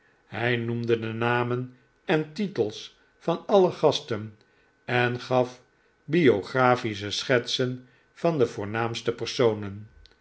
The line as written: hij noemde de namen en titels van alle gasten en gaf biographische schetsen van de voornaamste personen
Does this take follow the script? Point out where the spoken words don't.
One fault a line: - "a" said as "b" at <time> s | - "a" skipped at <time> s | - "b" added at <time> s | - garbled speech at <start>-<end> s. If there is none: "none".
none